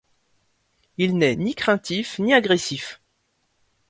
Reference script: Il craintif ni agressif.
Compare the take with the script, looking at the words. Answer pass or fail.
fail